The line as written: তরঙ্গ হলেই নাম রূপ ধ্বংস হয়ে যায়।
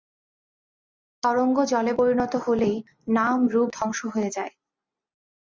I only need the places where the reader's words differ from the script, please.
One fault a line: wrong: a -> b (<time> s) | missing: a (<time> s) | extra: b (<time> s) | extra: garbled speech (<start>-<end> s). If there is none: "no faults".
extra: জলে পরিণত (1.7 s)